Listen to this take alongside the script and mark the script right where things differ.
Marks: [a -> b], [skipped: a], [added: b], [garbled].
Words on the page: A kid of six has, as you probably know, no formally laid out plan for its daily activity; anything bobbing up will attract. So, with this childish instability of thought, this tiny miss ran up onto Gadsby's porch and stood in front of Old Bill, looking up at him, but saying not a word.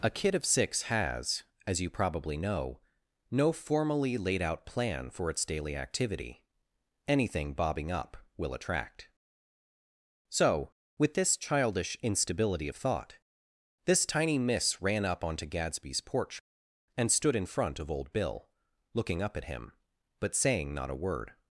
A kid of six has, as you probably know, no formally laid out plan for its daily activity; anything bobbing up will attract. So, with this childish instability of thought, this tiny miss ran up onto Gadsby's porch and stood in front of Old Bill, looking up at him, but saying not a word.